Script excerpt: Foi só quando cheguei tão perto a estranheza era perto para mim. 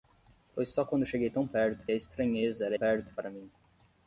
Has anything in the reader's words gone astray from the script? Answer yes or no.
no